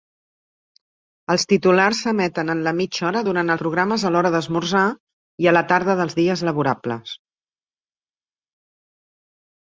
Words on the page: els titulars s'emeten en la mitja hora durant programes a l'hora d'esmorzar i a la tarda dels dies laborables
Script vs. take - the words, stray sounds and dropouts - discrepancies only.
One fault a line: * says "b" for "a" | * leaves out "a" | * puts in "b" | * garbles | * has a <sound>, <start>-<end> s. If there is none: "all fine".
all fine